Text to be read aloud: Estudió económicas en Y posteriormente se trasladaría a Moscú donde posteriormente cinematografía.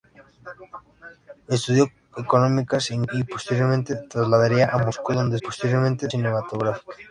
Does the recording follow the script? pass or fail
pass